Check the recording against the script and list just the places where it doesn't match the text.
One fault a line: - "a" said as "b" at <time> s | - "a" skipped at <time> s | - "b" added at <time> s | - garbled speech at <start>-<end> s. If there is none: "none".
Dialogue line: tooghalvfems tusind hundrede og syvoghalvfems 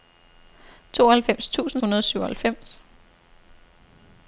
none